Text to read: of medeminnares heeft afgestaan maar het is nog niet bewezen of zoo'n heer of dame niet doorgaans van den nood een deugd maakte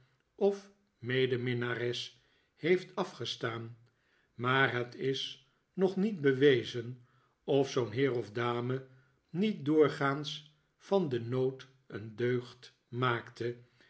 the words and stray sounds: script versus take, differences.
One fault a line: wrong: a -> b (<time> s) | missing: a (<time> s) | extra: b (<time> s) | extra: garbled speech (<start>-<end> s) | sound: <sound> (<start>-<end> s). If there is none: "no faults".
no faults